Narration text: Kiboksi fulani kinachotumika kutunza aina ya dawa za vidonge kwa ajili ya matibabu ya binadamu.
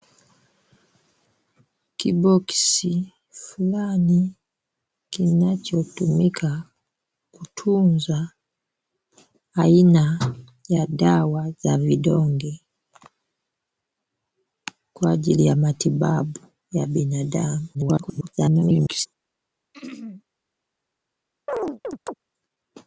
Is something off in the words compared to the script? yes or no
yes